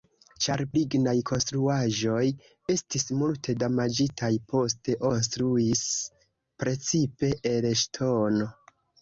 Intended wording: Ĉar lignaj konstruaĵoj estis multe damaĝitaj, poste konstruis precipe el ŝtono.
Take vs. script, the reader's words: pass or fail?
pass